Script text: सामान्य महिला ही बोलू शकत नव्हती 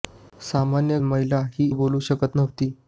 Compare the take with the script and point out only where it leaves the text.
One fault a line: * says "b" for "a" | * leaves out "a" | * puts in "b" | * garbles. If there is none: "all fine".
all fine